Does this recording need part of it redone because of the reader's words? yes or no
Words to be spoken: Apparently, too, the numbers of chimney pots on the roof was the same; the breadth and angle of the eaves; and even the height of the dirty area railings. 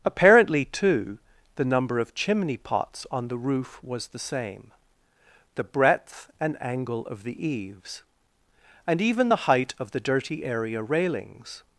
yes